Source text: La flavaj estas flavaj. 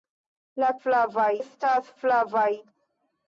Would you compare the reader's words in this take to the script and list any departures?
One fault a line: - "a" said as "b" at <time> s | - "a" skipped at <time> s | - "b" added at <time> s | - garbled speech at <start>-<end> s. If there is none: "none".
none